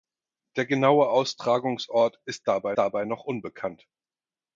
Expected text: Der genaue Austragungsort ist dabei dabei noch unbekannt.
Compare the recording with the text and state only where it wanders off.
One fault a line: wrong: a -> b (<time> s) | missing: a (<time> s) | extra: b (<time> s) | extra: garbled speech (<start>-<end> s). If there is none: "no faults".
no faults